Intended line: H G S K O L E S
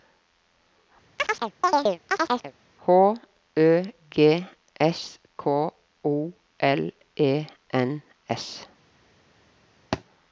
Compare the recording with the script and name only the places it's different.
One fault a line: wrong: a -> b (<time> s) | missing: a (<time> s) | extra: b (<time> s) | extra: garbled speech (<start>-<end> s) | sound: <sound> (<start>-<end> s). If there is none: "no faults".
sound: chirp (1.2-2.5 s)
extra: Ø (3.6 s)
extra: N (7.7 s)
sound: thud (9.9-10.0 s)